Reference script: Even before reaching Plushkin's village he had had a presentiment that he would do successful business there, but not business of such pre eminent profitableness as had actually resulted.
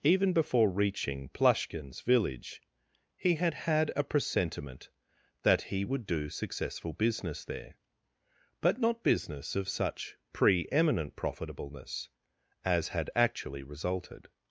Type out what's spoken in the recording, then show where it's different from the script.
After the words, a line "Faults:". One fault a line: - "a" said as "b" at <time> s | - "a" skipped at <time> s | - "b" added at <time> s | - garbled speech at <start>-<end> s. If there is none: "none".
Even before reaching Plushkin's village he had had a presentiment that he would do successful business there, but not business of such pre eminent profitableness as had actually resulted.
Faults:
none